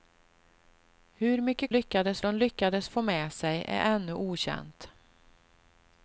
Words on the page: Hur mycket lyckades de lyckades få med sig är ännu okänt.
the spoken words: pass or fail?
pass